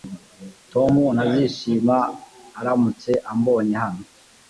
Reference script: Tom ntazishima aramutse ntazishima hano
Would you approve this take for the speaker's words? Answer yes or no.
no